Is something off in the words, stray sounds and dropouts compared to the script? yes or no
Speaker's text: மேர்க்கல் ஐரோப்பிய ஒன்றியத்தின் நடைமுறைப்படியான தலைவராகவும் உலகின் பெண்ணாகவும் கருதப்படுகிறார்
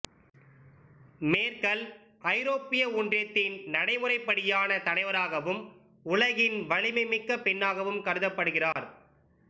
yes